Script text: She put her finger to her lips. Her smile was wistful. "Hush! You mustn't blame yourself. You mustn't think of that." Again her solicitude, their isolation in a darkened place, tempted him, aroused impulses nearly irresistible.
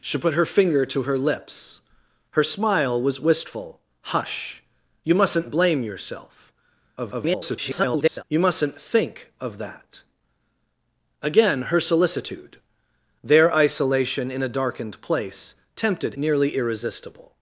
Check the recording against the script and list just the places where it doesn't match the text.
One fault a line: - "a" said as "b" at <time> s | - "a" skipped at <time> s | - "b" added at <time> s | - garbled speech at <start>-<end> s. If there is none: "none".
- garbled speech at 7.0-8.2 s
- "him aroused impulses" skipped at 16.1 s